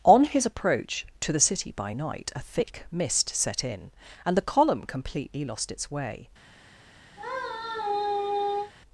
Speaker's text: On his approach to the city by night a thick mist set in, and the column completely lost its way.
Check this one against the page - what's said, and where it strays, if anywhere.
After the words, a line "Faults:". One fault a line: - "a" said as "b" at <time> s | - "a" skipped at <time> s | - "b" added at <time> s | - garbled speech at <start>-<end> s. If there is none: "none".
On his approach to the city by night a thick mist set in, and the column completely lost its way.
Faults:
none